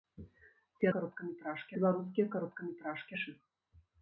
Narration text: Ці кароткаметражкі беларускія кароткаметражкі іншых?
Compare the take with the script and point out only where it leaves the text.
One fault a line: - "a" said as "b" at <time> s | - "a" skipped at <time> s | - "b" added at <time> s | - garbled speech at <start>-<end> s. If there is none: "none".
none